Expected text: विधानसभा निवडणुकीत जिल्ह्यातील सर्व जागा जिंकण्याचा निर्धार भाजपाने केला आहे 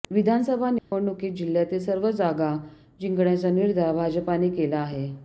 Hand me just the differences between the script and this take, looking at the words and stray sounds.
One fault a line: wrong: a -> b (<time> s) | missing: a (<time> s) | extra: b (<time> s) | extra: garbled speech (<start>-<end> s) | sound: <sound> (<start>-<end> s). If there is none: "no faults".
sound: dropout (0.8-0.9 s)